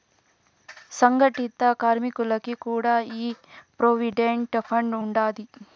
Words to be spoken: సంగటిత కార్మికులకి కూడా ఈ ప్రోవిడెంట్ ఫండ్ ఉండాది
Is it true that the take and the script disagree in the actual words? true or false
false